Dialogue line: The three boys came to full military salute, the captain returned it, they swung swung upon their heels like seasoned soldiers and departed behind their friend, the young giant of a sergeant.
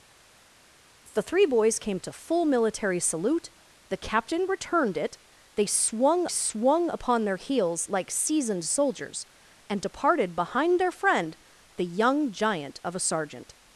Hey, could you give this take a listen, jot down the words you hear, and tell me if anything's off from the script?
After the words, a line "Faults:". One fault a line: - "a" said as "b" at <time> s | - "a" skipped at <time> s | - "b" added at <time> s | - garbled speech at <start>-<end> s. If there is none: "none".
The three boys came to full military salute, the captain returned it, they swung swung upon their heels like seasoned soldiers and departed behind their friend, the young giant of a sergeant.
Faults:
none